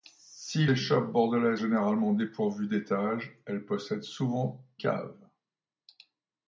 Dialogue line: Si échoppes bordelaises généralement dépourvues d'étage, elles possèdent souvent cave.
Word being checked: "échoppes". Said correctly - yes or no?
yes